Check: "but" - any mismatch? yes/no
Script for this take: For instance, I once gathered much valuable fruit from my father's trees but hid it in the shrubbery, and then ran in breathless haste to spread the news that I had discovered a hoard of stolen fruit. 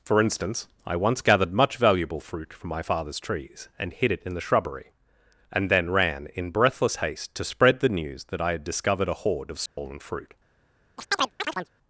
yes